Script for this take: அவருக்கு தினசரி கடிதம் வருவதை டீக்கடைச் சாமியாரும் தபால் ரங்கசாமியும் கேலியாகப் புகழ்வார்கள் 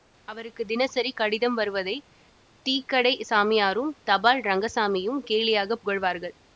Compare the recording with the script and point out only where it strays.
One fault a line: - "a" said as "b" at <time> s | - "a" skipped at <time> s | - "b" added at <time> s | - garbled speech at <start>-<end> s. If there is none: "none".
none